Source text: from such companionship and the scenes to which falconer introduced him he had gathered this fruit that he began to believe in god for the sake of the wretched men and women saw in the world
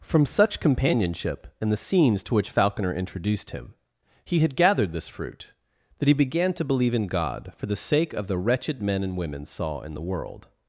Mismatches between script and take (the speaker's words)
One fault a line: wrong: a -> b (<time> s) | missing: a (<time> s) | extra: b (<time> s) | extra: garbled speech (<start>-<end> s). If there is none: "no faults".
no faults